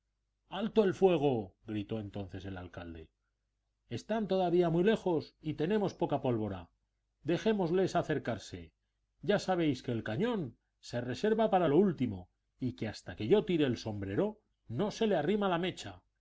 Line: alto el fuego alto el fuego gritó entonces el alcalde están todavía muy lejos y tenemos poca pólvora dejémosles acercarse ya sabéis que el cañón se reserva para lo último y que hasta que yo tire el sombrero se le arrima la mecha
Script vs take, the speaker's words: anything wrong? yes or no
yes